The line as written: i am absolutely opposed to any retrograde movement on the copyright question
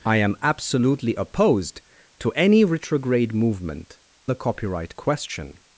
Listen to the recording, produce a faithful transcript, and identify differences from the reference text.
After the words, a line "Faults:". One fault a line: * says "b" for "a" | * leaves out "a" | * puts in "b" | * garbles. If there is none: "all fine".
i am absolutely opposed to any retrograde movement the copyright question
Faults:
* leaves out "on"